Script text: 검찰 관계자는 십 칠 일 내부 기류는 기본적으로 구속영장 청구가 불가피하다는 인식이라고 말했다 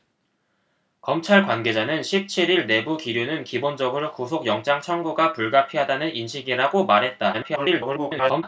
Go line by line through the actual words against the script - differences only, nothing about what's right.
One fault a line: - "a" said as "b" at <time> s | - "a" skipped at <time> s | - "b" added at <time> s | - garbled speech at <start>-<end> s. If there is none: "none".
- garbled speech at 7.3-8.4 s